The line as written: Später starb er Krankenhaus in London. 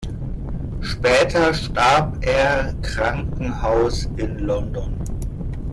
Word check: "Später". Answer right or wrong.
right